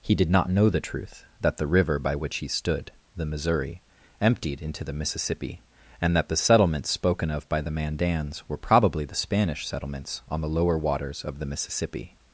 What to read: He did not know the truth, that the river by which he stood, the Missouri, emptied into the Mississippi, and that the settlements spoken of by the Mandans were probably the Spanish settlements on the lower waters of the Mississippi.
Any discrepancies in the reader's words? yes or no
no